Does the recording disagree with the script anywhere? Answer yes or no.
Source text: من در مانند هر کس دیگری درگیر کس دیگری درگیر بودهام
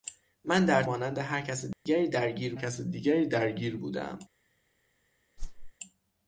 no